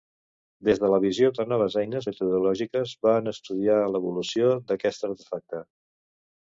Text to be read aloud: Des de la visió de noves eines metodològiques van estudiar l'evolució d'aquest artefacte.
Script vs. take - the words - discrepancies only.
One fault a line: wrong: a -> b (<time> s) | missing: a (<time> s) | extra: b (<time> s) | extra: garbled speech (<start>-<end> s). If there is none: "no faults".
no faults